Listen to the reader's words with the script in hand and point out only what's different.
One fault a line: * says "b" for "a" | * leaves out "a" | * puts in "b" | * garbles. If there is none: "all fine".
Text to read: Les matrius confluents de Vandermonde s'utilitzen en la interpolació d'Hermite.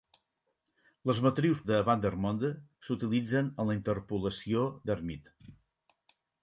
* leaves out "confluents"